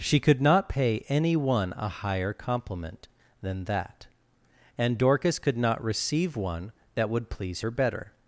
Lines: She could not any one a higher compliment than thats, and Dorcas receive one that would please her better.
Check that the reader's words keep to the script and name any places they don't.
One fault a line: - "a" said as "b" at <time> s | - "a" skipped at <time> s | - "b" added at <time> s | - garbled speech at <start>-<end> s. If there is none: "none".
- "pay" added at 0.7 s
- "thats" said as "that" at 3.6 s
- "could not" added at 5.4 s